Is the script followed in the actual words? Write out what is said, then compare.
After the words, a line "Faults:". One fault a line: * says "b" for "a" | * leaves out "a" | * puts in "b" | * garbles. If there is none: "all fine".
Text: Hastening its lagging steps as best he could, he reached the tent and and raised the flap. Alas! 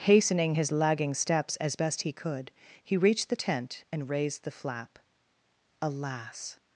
Hastening his lagging steps as best he could, he reached the tent and raised the flap. Alas!
Faults:
* says "his" for "its"
* leaves out "and"